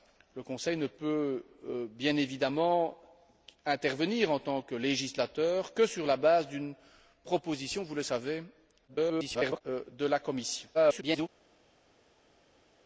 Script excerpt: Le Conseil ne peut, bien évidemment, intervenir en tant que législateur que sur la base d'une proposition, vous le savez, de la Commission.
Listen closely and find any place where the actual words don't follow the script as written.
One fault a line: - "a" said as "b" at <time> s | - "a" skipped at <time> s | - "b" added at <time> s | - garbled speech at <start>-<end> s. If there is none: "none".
- garbled speech at 8.9-9.6 s
- garbled speech at 10.7-11.3 s